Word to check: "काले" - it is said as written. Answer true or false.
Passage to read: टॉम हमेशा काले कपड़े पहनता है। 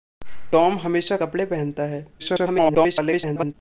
false